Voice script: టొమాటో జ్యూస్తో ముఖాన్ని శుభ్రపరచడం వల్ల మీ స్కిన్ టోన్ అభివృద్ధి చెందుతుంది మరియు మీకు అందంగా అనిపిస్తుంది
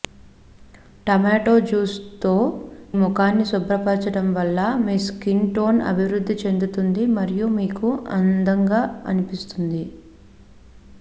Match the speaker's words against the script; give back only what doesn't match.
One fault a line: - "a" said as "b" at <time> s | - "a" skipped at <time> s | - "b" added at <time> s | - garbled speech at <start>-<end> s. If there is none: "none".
none